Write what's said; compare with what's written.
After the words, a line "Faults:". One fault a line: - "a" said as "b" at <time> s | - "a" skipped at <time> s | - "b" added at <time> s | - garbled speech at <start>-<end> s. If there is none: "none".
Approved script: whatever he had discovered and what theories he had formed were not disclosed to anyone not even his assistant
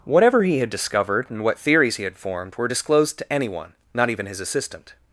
whatever he had discovered and what theories he had formed were disclosed to anyone not even his assistant
Faults:
- "not" skipped at 2.7 s